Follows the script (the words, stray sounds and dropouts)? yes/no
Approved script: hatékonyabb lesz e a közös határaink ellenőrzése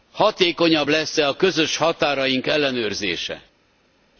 yes